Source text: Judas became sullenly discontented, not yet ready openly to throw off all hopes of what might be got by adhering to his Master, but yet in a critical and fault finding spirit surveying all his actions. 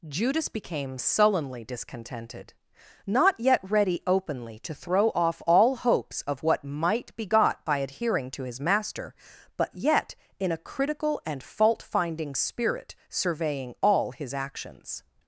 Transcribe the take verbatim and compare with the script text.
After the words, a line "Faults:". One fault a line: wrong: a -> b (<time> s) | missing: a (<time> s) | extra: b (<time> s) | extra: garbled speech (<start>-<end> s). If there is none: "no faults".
Judas became sullenly discontented, not yet ready openly to throw off all hopes of what might be got by adhering to his Master, but yet in a critical and fault finding spirit surveying all his actions.
Faults:
no faults